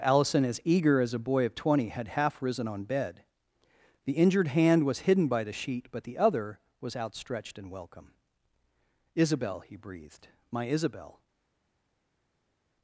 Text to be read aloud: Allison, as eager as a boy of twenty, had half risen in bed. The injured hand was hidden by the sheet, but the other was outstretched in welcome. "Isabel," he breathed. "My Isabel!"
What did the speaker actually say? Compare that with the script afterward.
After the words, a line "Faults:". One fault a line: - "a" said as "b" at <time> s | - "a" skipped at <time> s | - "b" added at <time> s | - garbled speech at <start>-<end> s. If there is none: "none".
Allison, as eager as a boy of twenty, had half risen on bed. The injured hand was hidden by the sheet, but the other was outstretched in welcome. "Isabel," he breathed. "My Isabel!"
Faults:
- "in" said as "on" at 2.7 s